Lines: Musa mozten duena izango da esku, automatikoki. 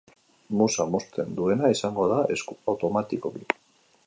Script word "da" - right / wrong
right